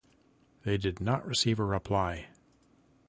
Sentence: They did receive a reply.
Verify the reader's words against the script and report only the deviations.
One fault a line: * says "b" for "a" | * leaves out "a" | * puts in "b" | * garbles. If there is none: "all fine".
* puts in "not"